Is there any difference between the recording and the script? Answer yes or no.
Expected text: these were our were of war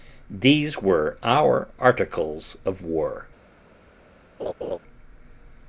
yes